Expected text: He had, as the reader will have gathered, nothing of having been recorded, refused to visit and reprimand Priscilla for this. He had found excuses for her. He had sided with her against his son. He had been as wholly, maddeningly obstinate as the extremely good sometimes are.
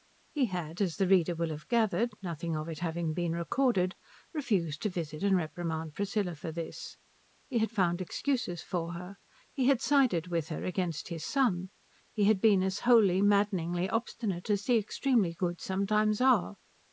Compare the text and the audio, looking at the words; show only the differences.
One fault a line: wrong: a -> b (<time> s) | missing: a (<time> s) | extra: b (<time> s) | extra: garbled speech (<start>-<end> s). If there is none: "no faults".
extra: it (2.7 s)